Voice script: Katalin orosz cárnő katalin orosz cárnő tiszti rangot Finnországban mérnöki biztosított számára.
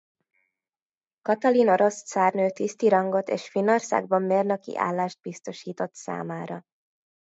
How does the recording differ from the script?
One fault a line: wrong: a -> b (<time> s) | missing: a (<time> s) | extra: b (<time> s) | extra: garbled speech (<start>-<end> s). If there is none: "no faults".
missing: katalin orosz cárnő (2.5 s)
extra: és (3.3 s)
extra: állást (4.8 s)